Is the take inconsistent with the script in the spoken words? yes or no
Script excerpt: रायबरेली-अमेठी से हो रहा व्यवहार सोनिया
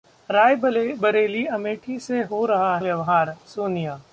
no